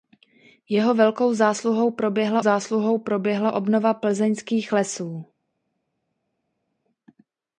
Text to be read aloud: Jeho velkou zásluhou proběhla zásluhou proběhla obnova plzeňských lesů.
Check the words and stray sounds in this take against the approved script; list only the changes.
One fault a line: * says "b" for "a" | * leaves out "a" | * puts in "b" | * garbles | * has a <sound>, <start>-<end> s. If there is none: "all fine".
all fine